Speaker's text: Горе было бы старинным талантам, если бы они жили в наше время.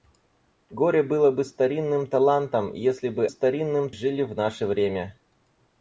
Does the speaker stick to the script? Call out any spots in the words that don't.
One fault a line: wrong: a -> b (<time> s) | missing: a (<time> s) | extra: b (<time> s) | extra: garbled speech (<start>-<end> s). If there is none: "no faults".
wrong: они -> старинным (3.3 s)